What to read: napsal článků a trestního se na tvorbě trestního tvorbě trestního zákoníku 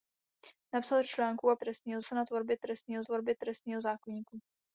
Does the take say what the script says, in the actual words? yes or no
yes